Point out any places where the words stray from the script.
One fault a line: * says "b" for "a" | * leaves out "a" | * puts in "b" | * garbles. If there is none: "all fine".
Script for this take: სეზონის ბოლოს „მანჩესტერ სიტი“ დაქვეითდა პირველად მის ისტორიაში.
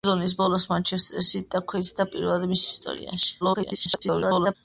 * garbles